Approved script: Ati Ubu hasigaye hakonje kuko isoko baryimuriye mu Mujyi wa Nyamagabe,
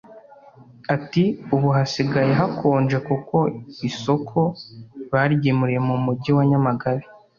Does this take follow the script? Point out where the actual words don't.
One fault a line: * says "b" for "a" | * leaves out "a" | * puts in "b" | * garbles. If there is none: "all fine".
all fine